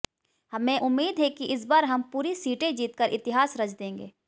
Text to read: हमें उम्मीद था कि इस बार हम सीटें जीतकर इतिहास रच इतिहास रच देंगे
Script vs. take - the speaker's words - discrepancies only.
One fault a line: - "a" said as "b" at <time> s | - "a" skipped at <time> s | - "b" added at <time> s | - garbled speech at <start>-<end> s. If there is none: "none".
- "था" said as "है" at 1.2 s
- "पूरी" added at 2.1 s
- "इतिहास रच" skipped at 3.7 s